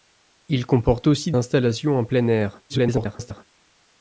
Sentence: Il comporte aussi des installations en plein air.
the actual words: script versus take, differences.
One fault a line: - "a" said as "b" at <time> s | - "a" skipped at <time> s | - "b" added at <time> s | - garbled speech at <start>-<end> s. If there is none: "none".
- "des" skipped at 1.3 s
- garbled speech at 2.7-3.5 s